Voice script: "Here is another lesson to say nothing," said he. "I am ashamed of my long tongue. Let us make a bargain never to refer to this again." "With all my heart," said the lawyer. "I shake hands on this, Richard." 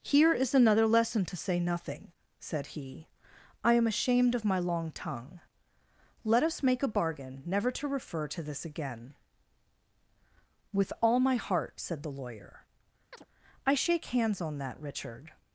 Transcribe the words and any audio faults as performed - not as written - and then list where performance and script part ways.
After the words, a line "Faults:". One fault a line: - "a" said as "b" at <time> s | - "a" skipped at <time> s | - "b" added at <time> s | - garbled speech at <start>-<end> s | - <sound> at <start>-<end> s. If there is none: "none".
"Here is another lesson to say nothing," said he. "I am ashamed of my long tongue. Let us make a bargain never to refer to this again." "With all my heart," said the lawyer. "I shake hands on that, Richard."
Faults:
- chirp at 13.1-13.3 s
- "this" said as "that" at 14.6 s